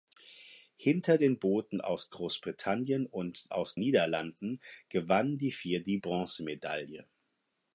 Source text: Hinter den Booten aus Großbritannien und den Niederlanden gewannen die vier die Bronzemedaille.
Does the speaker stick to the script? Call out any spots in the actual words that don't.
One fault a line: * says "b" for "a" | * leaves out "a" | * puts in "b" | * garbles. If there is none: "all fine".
* says "aus" for "den"